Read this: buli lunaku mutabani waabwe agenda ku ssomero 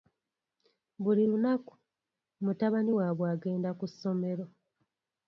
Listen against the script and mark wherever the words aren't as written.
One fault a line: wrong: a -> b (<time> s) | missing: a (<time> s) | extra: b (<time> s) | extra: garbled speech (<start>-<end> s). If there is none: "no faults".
no faults